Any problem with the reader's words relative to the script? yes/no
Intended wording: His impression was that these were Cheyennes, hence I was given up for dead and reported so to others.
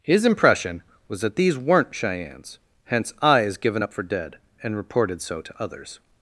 yes